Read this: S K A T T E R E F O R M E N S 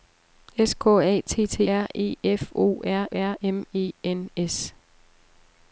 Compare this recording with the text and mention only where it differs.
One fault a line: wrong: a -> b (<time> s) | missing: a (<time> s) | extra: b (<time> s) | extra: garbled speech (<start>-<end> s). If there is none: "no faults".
missing: E (1.6 s)
extra: R (3.1 s)